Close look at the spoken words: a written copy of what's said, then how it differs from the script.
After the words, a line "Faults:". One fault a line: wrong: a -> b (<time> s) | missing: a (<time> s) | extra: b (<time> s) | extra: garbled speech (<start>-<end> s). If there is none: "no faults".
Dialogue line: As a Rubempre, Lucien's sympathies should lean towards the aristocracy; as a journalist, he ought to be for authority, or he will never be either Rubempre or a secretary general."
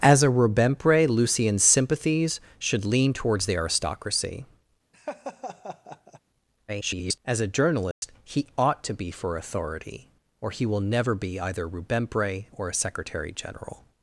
As a Rubempre, Lucien's sympathies should lean towards the aristocracy; [garbled] as a journalist, he ought to be for authority, or he will never be either Rubempre or a secretary general."
Faults:
extra: garbled speech (6.7-7.2 s)